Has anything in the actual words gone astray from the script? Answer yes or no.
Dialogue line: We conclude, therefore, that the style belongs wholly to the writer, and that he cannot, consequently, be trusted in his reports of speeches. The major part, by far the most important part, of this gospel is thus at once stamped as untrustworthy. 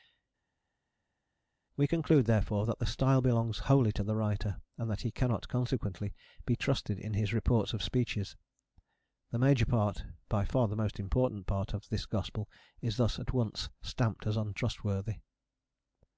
no